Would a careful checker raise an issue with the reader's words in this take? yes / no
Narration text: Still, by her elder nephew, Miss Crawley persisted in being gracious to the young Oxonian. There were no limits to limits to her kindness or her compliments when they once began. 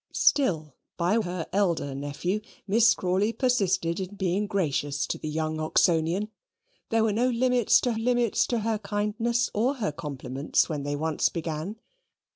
no